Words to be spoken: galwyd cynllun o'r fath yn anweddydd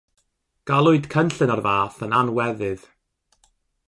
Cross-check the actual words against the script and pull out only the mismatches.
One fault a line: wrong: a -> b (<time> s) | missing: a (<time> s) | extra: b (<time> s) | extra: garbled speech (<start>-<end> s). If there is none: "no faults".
no faults